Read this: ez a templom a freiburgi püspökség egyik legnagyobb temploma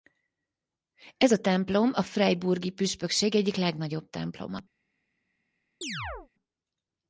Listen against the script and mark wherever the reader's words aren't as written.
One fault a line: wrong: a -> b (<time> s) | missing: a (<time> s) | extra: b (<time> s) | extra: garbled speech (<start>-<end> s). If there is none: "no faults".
no faults